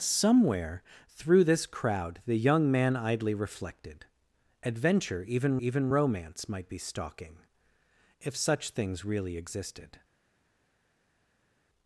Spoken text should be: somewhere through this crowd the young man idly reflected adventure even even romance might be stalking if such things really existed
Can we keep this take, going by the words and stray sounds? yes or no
yes